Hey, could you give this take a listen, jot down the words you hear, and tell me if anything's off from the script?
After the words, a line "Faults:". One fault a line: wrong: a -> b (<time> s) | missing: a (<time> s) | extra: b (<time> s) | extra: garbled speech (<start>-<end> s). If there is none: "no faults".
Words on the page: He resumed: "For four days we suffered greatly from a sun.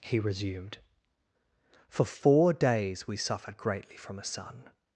He resumed: "For four days we suffered greatly from a sun.
Faults:
no faults